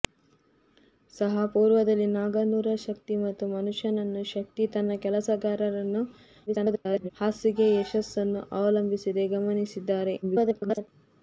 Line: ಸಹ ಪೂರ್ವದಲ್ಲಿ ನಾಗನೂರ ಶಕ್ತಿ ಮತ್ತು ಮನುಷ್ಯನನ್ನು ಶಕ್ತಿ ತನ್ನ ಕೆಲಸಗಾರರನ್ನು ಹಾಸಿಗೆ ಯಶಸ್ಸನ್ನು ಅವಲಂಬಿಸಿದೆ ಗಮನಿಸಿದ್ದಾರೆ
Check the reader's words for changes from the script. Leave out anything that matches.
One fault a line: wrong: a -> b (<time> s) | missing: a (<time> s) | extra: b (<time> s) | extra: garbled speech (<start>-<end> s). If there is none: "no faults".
extra: garbled speech (6.5-7.1 s)
extra: garbled speech (10.2-10.9 s)